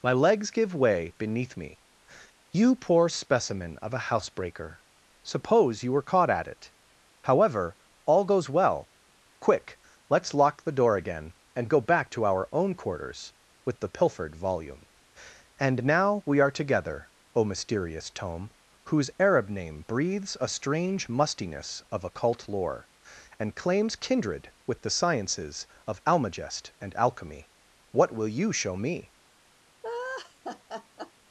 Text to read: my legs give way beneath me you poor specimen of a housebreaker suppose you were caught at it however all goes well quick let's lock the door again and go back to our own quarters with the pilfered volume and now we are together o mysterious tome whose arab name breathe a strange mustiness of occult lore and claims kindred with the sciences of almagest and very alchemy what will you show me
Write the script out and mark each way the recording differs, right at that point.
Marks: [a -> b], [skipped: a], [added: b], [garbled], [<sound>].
my legs give way beneath me you poor specimen of a housebreaker suppose you were caught at it however all goes well quick let's lock the door again and go back to our own quarters with the pilfered volume and now we are together o mysterious tome whose arab name [breathe -> breathes] a strange mustiness of occult lore and claims kindred with the sciences of almagest and [skipped: very] alchemy what will you show me [laugh]